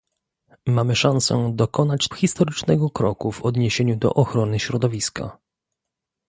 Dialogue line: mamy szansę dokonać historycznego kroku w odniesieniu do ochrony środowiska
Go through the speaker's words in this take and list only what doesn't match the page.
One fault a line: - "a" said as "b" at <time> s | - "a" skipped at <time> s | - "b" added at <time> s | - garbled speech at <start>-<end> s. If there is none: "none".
none